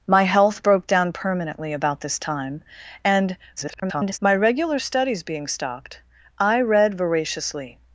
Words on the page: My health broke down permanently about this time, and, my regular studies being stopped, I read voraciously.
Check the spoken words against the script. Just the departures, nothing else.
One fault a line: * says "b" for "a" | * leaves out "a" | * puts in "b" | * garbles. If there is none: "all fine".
* garbles